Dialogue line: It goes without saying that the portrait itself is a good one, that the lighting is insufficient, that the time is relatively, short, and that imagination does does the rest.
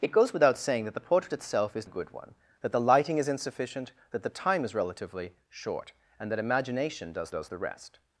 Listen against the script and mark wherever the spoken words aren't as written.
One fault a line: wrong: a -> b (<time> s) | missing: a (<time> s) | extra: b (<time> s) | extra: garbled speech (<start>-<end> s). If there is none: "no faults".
no faults